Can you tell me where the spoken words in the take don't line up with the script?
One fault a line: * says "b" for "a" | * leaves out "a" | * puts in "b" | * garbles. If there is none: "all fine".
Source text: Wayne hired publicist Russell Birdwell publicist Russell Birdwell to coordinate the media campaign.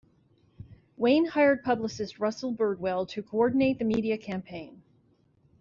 * leaves out "publicist Russell Birdwell"